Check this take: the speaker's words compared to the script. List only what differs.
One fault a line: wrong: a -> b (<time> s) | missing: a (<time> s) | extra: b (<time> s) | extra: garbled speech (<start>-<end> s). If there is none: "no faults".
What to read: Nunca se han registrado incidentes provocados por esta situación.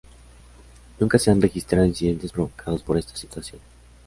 no faults